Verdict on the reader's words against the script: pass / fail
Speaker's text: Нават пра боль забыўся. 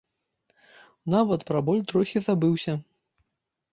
fail